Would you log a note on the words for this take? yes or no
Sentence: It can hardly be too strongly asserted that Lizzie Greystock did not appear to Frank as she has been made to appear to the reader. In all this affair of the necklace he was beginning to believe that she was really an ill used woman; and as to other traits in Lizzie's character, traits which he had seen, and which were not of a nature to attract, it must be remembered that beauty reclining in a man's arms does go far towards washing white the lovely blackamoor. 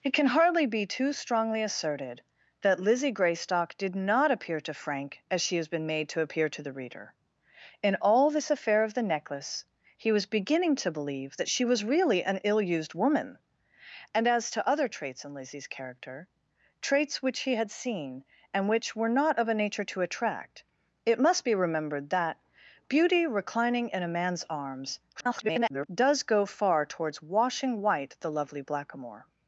yes